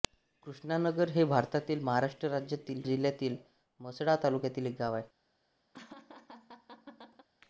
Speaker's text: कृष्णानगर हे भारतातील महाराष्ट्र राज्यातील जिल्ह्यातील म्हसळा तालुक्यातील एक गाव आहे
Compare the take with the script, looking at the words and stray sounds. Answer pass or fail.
fail